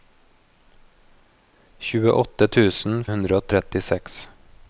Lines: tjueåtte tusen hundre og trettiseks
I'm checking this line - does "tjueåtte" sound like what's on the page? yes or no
yes